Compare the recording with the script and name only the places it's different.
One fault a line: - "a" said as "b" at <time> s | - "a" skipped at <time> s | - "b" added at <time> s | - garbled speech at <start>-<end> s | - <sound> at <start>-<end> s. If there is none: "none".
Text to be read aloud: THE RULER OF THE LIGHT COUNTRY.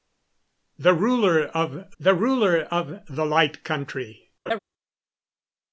- "RULER OF THE" added at 2.2 s
- laugh at 4.5-4.6 s